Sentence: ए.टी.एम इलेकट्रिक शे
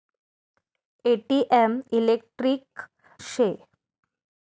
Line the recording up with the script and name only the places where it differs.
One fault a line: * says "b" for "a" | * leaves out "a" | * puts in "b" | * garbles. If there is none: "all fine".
all fine